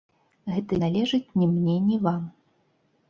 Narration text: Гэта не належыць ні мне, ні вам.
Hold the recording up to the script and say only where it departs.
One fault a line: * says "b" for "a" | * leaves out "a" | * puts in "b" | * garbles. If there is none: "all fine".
* leaves out "не"